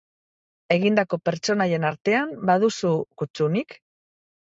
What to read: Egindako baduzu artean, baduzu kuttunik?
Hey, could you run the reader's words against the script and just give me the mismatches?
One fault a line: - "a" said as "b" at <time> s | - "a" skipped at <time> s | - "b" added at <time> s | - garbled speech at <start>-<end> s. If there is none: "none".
- "baduzu" said as "pertsonaien" at 1.3 s